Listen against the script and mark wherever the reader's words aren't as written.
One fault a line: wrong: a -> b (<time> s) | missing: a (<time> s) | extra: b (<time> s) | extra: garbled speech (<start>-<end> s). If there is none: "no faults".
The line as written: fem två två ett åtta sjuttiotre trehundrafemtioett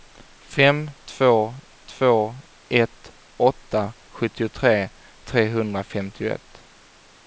no faults